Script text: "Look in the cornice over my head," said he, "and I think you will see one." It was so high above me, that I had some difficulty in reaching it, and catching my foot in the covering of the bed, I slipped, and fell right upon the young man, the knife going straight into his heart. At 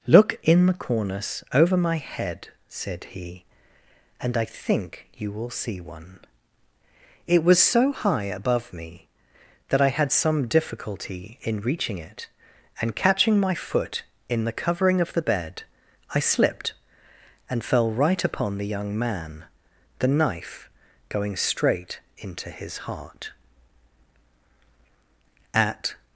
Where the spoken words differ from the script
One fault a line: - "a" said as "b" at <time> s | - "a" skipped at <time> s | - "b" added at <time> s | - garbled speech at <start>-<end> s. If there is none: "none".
none